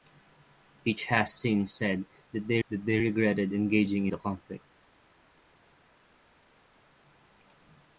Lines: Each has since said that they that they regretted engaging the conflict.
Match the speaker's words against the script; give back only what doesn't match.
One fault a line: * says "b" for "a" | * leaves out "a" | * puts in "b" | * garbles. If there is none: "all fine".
all fine